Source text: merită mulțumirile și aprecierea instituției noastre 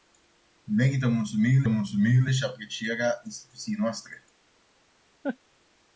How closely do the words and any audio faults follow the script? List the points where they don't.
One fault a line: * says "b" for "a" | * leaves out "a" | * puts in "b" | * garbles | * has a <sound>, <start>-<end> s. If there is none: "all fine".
* puts in "mulțumirile"
* has a laugh, 5.2-5.4 s